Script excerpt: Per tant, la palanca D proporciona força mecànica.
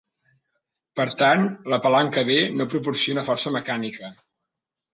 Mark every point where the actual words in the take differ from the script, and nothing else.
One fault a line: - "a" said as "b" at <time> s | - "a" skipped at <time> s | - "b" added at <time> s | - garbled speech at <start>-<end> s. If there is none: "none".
- "no" added at 2.6 s